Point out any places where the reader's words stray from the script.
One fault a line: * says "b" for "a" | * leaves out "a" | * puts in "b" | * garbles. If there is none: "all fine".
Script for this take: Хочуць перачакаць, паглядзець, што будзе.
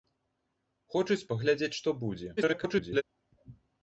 * leaves out "перачакаць"
* garbles